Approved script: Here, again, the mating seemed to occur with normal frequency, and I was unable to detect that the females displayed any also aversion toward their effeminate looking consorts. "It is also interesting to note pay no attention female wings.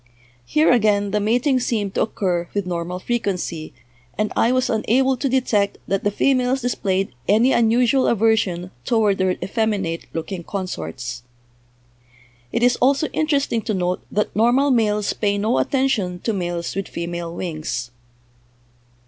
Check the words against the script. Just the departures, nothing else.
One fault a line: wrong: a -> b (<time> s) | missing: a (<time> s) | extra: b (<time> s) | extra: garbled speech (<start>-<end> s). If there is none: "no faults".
wrong: also -> unusual (7.5 s)
extra: that normal males (14.1 s)
extra: to males with (16.2 s)